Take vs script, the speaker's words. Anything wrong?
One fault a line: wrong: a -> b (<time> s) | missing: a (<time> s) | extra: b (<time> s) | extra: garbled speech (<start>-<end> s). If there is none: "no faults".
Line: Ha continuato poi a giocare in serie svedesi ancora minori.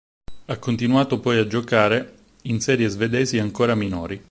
no faults